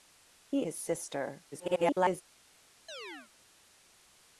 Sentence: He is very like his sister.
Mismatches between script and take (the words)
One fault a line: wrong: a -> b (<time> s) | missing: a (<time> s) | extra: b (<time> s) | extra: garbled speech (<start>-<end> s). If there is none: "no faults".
missing: is very like (0.7 s)
extra: garbled speech (1.5-2.2 s)